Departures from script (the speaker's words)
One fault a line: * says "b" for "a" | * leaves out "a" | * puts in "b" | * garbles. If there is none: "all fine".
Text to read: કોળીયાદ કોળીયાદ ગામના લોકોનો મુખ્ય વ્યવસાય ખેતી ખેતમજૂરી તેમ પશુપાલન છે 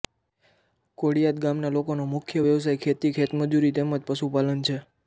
* leaves out "કોળીયાદ"
* puts in "જ"